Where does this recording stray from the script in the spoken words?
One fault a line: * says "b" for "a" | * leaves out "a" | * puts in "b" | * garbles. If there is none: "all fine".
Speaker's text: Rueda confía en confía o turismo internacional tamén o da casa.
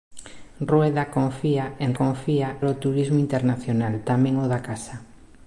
all fine